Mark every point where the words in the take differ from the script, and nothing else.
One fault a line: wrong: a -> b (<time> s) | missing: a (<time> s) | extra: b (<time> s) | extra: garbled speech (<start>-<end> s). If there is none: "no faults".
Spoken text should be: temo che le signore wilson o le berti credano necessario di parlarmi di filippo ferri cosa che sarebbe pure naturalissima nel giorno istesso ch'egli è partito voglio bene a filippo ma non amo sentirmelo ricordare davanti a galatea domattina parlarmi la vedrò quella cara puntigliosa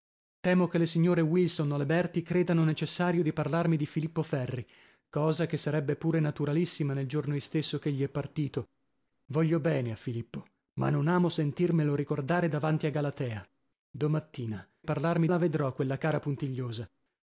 no faults